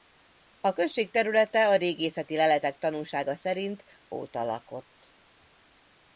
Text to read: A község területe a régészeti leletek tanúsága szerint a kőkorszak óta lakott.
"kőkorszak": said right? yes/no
no